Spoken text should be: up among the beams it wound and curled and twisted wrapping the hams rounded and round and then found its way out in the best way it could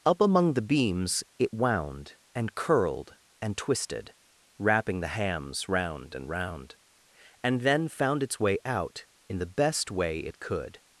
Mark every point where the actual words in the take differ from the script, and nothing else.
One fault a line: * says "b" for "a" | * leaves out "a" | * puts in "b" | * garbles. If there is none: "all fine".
* says "round" for "rounded"